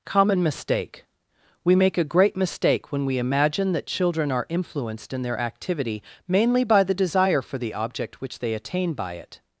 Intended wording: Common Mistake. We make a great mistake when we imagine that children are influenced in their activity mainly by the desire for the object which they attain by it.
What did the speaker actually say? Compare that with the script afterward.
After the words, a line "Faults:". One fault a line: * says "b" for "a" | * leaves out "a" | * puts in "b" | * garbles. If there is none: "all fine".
Common Mistake. We make a great mistake when we imagine that children are influenced in their activity mainly by the desire for the object which they attain by it.
Faults:
all fine